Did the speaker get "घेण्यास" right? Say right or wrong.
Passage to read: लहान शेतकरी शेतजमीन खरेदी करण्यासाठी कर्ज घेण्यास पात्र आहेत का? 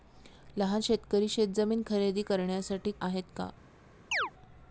wrong